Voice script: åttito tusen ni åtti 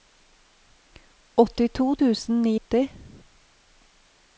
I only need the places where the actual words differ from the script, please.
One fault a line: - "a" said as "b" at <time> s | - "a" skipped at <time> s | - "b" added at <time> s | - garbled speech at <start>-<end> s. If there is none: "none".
none